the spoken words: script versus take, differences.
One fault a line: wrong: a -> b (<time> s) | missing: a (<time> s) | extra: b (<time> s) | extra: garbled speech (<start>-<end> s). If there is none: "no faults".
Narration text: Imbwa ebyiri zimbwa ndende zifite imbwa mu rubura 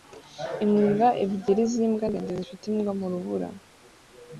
no faults